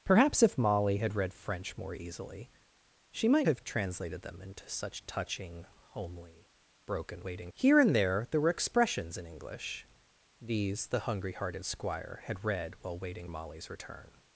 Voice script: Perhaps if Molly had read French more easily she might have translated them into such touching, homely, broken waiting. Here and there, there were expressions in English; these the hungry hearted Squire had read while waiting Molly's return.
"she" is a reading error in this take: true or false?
false